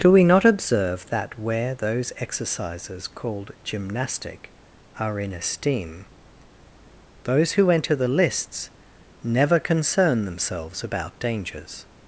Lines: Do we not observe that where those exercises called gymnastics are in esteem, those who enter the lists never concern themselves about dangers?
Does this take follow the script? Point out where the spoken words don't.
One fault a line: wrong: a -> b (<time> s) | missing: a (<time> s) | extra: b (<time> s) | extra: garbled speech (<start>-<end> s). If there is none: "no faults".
wrong: gymnastics -> gymnastic (3.7 s)